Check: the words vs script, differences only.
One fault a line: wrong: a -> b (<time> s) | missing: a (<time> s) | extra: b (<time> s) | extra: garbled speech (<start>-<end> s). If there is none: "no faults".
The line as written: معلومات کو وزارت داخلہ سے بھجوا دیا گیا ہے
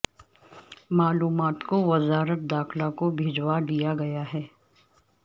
wrong: سے -> کو (3.0 s)